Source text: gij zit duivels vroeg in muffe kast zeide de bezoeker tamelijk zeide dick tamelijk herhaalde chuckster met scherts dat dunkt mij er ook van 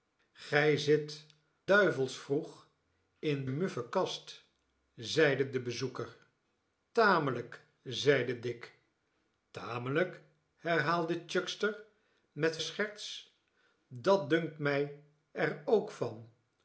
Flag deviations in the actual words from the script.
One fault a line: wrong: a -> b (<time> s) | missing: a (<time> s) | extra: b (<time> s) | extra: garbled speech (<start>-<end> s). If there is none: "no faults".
no faults